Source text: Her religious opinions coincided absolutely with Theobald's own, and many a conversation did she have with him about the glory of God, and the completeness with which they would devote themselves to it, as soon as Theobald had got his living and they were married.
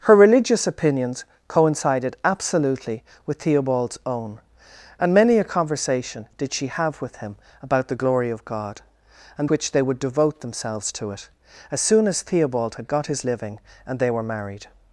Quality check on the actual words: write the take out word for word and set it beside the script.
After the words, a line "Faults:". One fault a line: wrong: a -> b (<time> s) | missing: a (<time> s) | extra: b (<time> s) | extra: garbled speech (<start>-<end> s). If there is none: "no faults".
Her religious opinions coincided absolutely with Theobald's own, and many a conversation did she have with him about the glory of God, and which they would devote themselves to it, as soon as Theobald had got his living and they were married.
Faults:
missing: the completeness with (9.5 s)